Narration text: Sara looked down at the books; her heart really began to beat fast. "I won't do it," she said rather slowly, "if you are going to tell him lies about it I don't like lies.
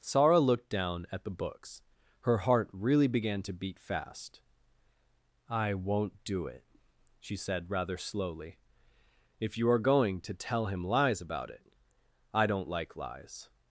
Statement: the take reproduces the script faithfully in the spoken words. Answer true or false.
true